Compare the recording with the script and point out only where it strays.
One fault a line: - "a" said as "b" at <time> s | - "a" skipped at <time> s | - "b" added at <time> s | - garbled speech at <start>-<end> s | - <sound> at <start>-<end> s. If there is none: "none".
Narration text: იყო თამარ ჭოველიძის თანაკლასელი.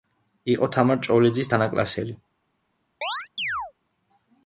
- chirp at 3.0-3.7 s